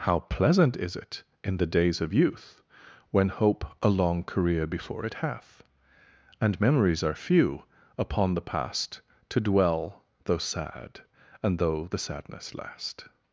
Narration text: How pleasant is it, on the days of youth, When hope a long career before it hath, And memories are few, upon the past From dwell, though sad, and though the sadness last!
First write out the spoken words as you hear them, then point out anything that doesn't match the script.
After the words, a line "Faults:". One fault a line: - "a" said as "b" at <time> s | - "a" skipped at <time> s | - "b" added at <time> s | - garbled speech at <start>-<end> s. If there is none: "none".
How pleasant is it, in the days of youth, When hope a long career before it hath, And memories are few, upon the past To dwell, though sad, and though the sadness last!
Faults:
- "on" said as "in" at 1.4 s
- "From" said as "To" at 9.3 s